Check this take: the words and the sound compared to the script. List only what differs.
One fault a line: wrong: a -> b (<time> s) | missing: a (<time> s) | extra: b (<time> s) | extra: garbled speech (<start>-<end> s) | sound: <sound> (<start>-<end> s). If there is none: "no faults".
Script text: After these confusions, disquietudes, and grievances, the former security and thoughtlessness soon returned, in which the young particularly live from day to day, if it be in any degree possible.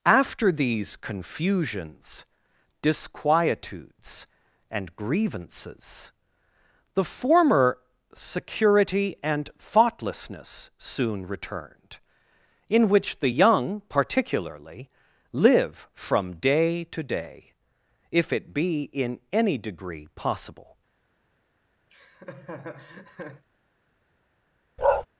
sound: laugh (21.9-23.4 s)
sound: bark (24.8-25.1 s)